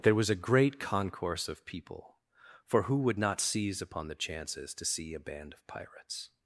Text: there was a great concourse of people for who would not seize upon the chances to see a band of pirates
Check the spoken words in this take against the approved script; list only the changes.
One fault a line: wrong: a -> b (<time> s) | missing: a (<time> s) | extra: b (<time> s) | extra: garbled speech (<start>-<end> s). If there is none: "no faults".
no faults